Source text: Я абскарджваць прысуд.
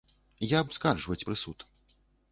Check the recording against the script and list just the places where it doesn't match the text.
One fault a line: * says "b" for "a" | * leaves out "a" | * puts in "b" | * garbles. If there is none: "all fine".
all fine